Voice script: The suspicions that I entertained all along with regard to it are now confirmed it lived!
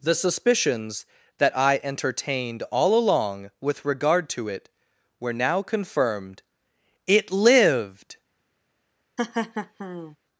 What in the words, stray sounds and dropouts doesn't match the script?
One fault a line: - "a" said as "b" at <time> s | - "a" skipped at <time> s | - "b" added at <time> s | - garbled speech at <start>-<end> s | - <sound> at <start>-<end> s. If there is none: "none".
- "are" said as "were" at 5.2 s
- laugh at 9.2-10.2 s